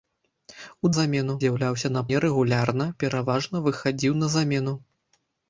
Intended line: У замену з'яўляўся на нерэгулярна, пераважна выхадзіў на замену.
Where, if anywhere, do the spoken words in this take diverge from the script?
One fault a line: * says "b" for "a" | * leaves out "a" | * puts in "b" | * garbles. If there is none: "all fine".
all fine